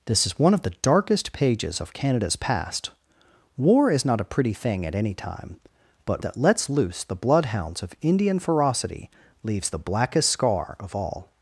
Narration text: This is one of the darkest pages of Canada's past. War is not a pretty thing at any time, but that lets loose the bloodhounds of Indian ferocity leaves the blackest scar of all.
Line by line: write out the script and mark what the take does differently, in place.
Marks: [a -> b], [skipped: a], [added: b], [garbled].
This is one of the darkest pages of Canada's past. War is not a pretty thing at any time, but that lets loose the bloodhounds of Indian ferocity leaves the blackest scar of all.